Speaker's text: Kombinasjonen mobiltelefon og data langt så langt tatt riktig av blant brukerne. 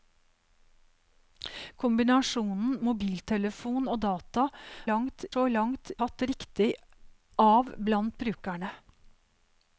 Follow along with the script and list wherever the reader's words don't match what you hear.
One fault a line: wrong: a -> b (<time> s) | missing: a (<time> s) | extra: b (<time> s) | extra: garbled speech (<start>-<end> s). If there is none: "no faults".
no faults